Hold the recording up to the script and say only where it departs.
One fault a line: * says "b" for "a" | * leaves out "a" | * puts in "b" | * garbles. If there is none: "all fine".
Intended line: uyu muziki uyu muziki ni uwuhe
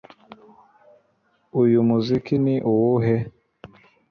* leaves out "uyu muziki"